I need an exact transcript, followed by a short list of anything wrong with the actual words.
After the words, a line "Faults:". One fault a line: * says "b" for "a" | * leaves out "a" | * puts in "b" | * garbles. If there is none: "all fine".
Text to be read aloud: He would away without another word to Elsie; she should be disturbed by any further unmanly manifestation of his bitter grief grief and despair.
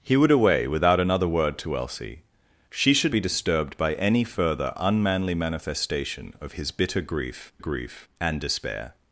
He would away without another word to Elsie; she should be disturbed by any further unmanly manifestation of his bitter grief grief and despair.
Faults:
all fine